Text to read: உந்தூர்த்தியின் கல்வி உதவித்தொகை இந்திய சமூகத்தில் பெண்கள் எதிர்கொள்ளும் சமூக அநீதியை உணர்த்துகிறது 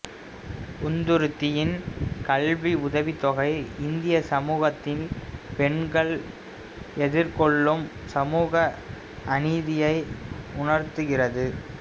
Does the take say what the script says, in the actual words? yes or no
yes